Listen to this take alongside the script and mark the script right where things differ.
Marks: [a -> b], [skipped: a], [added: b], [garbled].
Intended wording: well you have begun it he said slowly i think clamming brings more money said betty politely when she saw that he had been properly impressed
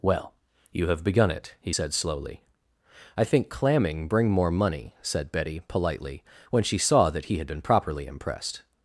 well you have begun it he said slowly i think clamming [brings -> bring] more money said betty politely when she saw that he had been properly impressed